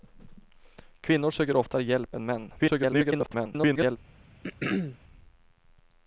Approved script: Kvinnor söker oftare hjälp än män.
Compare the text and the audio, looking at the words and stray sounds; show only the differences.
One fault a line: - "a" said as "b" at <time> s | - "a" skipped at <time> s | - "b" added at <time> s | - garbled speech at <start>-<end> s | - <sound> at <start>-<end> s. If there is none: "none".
- garbled speech at 2.6-4.0 s
- throat clearing at 4.4-5.0 s